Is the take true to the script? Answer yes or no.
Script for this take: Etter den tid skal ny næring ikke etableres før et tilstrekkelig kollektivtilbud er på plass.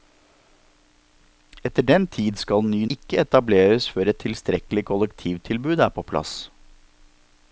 no